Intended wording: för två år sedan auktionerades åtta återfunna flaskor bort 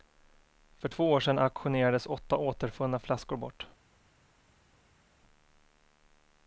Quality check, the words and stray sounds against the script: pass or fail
pass